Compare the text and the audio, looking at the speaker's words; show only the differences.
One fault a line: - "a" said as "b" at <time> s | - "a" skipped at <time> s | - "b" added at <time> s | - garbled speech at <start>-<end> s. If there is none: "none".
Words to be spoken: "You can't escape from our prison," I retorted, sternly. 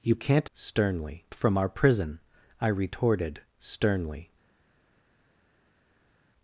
- "escape" said as "sternly" at 0.5 s